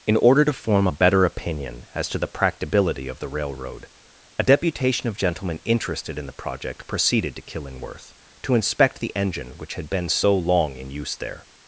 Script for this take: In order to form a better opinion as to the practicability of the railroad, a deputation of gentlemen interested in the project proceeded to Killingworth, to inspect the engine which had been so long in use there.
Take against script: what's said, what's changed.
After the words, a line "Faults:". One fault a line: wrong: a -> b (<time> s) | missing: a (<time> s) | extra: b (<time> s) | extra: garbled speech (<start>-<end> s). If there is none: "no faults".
In order to form a better opinion as to the practicability of the railroad, a deputation of gentlemen interested in the project proceeded to Killingworth, to inspect the engine which had been so long in use there.
Faults:
no faults